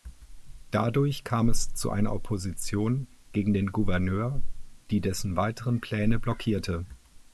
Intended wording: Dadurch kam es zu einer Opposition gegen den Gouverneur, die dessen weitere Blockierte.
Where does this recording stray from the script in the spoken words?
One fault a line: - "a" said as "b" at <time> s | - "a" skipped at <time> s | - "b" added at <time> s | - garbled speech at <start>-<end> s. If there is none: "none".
- "Pläne" added at 5.8 s